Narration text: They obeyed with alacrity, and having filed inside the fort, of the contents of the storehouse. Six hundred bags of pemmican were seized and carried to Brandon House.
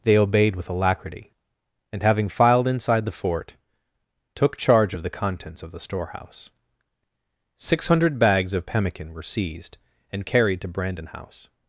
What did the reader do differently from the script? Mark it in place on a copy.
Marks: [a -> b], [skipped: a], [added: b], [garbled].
They obeyed with alacrity, and having filed inside the fort, [added: took charge] of the contents of the storehouse. Six hundred bags of pemmican were seized and carried to Brandon House.